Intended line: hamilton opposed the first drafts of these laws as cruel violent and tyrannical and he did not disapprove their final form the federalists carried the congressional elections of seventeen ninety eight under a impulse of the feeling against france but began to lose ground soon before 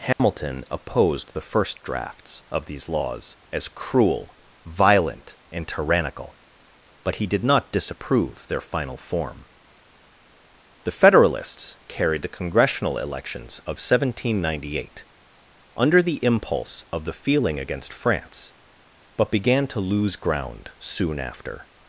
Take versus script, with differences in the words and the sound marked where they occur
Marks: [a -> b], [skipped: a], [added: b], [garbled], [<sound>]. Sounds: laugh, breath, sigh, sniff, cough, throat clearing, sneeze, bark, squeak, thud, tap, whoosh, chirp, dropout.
hamilton [dropout] opposed the first drafts of these laws as cruel violent and tyrannical [and -> but] he did not disapprove their final form the federalists carried the congressional elections of seventeen ninety eight under [a -> the] impulse of the feeling against france but began to lose ground soon [before -> after]